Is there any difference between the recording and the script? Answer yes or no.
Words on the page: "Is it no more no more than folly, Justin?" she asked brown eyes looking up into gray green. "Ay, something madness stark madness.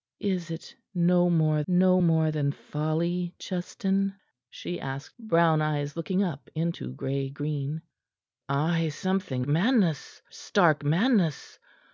no